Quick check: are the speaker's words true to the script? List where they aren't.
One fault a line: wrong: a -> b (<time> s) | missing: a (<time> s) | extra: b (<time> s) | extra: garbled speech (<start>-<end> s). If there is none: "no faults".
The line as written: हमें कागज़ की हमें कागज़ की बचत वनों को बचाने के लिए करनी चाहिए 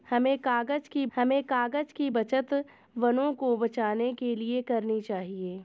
no faults